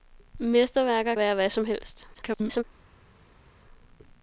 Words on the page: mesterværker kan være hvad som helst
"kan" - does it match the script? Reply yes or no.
no